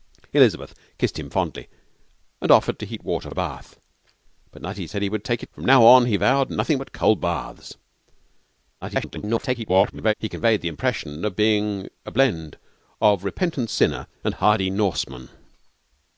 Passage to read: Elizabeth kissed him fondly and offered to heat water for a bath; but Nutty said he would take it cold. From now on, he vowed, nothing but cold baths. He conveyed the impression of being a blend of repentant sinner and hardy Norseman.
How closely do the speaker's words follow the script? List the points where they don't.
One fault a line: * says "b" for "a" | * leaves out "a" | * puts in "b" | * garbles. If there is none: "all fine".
* leaves out "for"
* leaves out "it cold"
* garbles